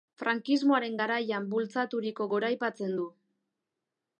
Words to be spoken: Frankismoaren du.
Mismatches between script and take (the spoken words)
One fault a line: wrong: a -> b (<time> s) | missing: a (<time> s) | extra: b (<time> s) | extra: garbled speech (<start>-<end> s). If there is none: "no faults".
extra: garaian bultzaturiko goraipatzen (1.0 s)